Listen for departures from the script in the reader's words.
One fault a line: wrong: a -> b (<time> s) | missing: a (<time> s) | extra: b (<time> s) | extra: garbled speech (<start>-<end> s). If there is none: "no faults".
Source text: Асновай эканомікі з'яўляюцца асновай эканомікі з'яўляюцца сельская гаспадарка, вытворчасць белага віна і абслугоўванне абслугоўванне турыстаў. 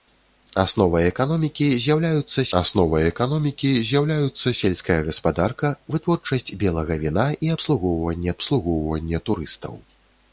no faults